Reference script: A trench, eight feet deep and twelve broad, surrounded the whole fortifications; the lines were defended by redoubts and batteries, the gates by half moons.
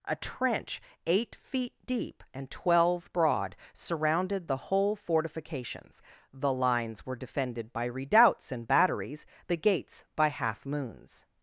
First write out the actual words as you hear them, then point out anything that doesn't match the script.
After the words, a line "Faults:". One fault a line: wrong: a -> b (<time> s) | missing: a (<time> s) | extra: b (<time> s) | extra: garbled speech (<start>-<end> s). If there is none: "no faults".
A trench, eight feet deep and twelve broad, surrounded the whole fortifications; the lines were defended by redoubts and batteries, the gates by half moons.
Faults:
no faults